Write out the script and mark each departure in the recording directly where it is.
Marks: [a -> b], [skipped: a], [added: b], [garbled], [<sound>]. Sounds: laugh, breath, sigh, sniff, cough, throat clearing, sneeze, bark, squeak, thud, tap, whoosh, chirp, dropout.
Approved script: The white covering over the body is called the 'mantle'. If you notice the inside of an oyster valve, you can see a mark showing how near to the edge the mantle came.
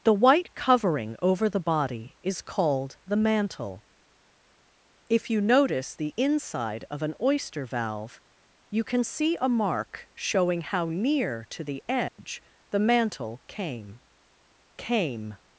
The white covering over the body is called the 'mantle'. If you notice the inside of an oyster valve, you can see a mark showing how near to the edge [dropout] the mantle came. [added: came]